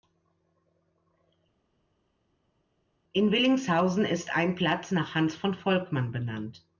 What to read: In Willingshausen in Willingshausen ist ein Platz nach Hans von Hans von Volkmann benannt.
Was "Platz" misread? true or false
false